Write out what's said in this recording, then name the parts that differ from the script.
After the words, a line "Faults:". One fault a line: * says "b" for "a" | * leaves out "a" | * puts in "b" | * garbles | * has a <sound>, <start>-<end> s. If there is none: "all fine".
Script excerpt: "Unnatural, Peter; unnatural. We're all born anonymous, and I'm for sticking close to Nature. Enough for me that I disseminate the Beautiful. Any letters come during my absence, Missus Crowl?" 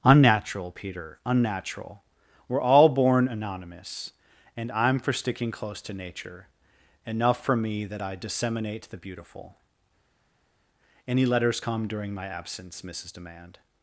"Unnatural, Peter; unnatural. We're all born anonymous, and I'm for sticking close to Nature. Enough for me that I disseminate the Beautiful. Any letters come during my absence, Missus Demand?"
Faults:
* says "Demand" for "Crowl"